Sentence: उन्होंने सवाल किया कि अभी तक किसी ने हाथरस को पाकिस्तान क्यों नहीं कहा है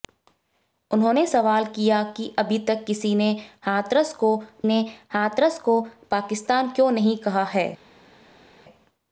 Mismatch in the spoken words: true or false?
true